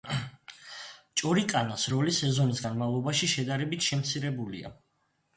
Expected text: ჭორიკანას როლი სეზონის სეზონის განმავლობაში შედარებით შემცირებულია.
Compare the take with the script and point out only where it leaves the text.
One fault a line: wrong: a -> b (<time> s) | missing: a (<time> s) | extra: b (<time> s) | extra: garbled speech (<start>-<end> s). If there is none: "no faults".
missing: სეზონის (2.6 s)